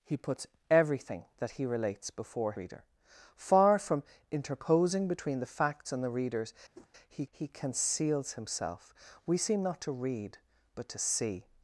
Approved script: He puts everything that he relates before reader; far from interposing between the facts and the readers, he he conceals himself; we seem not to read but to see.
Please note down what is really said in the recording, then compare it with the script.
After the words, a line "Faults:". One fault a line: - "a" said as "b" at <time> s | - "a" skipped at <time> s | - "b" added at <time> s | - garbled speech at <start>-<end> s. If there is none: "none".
He puts everything that he relates before reader; far from interposing between the facts and the readers, he he conceals himself; we seem not to read but to see.
Faults:
none